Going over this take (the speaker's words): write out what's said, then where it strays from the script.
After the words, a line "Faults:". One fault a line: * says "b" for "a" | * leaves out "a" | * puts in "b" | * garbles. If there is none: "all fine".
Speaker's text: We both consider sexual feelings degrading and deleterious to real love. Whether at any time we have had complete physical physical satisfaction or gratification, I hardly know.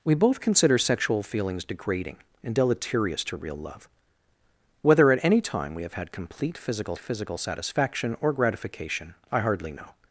We both consider sexual feelings degrading and deleterious to real love. Whether at any time we have had complete physical physical satisfaction or gratification, I hardly know.
Faults:
all fine